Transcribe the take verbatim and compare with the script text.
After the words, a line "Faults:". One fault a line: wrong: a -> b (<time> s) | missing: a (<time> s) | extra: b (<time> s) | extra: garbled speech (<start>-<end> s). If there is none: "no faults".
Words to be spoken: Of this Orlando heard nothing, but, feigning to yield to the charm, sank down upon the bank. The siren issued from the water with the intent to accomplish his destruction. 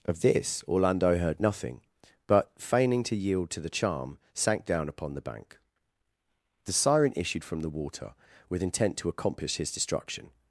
Of this Orlando heard nothing, but, feigning to yield to the charm, sank down upon the bank. The siren issued from the water with intent to accomplish his destruction.
Faults:
missing: the (8.6 s)